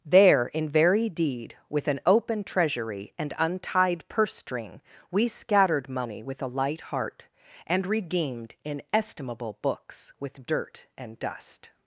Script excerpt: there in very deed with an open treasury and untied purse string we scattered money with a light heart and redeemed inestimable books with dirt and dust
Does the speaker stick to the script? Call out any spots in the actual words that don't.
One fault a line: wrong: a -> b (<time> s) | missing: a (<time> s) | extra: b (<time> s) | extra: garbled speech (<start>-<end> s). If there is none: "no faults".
no faults